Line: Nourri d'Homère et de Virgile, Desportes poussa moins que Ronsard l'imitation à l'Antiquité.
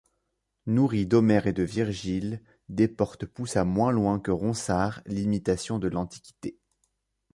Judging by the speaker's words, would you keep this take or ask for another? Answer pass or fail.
fail